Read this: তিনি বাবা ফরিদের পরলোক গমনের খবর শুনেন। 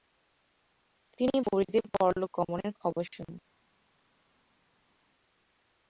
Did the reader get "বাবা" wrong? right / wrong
wrong